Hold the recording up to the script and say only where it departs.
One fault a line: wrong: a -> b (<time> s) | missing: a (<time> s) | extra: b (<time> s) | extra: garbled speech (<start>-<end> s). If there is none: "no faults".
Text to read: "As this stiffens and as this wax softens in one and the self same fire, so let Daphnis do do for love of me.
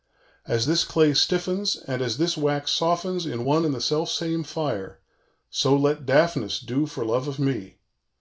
extra: clay (0.8 s)
missing: do (6.9 s)